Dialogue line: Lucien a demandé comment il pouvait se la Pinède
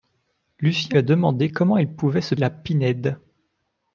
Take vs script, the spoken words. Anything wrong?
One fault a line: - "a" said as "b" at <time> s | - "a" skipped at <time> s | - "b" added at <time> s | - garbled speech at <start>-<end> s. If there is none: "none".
none